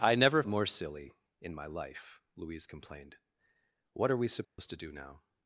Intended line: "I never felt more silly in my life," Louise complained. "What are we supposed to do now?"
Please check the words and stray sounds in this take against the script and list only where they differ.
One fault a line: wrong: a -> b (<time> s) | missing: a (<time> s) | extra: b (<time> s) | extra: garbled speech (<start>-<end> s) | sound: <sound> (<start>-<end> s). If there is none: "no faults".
missing: felt (0.4 s)
sound: dropout (4.4-4.6 s)